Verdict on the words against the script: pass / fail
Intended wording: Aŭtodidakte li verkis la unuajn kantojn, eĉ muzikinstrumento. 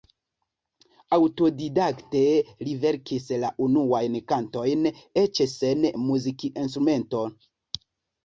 fail